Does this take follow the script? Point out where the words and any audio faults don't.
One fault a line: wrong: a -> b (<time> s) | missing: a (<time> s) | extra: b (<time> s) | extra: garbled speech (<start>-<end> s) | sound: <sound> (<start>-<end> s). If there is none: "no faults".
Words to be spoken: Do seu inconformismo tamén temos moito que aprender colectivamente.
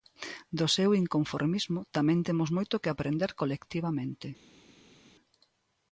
no faults